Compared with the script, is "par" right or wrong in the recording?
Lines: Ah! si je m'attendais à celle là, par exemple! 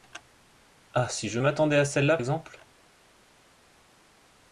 wrong